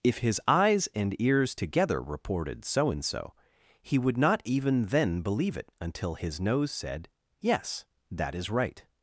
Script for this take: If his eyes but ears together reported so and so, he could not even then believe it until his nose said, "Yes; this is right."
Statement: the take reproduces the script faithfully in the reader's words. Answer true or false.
false